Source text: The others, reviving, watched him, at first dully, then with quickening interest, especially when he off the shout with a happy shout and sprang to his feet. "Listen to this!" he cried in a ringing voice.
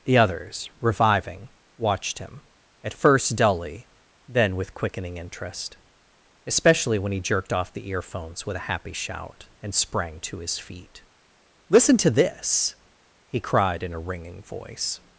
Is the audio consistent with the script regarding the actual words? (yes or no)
no